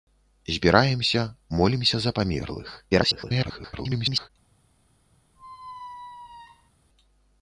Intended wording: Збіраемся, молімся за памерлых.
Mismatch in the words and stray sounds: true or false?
true